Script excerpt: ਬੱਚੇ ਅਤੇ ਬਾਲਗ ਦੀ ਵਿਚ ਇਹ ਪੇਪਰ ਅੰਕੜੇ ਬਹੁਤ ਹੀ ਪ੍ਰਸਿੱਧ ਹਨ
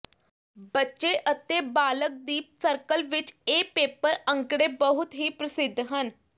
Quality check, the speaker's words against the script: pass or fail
fail